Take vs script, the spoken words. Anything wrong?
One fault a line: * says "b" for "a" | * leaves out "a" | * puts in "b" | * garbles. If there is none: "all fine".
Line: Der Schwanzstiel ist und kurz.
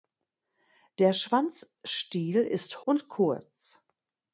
all fine